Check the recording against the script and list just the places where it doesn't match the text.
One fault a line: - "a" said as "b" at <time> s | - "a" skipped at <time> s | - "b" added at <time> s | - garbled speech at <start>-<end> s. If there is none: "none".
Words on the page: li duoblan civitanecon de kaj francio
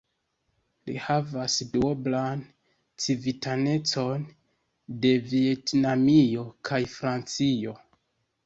- "havas" added at 1.1 s
- "vjetnamio" added at 5.3 s